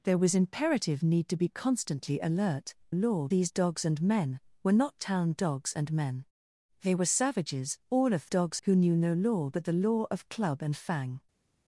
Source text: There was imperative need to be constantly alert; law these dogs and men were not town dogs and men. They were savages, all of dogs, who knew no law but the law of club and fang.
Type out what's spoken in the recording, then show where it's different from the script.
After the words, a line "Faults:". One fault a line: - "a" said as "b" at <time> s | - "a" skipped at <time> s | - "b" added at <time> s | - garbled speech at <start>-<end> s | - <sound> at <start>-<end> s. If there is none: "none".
There was imperative need to be constantly alert; law these dogs and men were not town dogs and men. They were savages, all of dogs, who knew no law but the law of club and fang.
Faults:
none